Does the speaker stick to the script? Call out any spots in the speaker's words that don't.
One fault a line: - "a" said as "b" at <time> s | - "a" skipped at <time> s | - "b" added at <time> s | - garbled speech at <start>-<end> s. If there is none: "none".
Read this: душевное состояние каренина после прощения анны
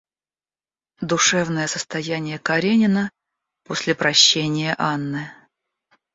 none